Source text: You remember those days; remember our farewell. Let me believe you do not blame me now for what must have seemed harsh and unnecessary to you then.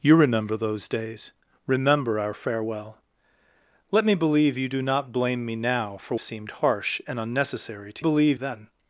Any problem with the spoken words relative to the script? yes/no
yes